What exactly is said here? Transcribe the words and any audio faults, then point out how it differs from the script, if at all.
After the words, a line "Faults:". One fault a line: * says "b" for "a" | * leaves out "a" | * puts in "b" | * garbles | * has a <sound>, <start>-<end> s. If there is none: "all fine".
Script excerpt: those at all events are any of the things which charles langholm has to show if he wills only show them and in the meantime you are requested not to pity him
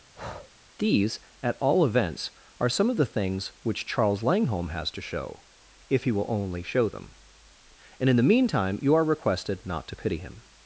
these at all events are some of the things which charles langholm has to show if he will only show them and in the meantime you are requested not to pity him
Faults:
* has a breath, 0.1-0.5 s
* says "these" for "those"
* says "some" for "any"
* says "will" for "wills"